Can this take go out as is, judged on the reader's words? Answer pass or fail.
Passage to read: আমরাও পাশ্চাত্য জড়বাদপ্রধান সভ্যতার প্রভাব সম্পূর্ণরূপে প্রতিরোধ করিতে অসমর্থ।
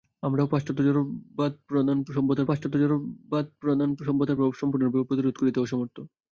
fail